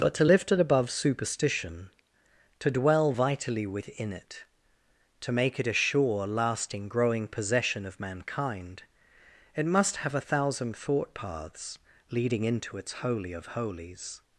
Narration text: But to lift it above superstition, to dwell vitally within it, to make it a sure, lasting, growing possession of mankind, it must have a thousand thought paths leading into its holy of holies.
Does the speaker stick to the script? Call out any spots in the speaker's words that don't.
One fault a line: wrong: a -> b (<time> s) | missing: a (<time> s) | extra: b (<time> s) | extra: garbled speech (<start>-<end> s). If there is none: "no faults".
no faults